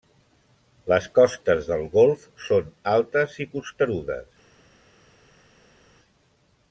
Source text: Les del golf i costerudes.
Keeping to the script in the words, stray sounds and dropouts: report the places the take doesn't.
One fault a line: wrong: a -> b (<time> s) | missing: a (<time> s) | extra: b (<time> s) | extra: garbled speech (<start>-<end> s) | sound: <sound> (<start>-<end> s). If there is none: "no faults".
extra: costes (1.2 s)
extra: són altes (2.5 s)